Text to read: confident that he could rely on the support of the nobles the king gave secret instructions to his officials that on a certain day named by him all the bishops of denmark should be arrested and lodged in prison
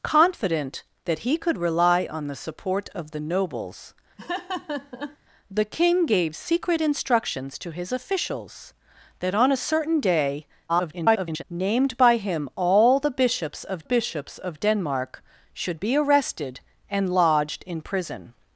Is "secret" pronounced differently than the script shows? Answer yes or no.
no